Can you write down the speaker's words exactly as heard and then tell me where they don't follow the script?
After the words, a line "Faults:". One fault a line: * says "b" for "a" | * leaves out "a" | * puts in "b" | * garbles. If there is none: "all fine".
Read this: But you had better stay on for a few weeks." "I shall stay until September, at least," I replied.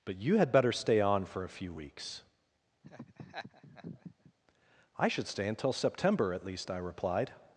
But you had better stay on for a few weeks." "I should stay until September, at least," I replied.
Faults:
* says "should" for "shall"